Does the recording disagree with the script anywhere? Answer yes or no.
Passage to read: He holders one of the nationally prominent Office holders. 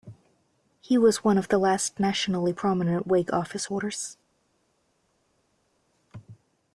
yes